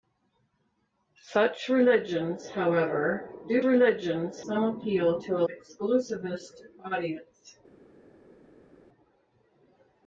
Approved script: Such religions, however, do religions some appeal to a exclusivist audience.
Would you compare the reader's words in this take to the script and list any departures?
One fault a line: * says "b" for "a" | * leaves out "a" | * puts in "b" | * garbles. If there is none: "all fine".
all fine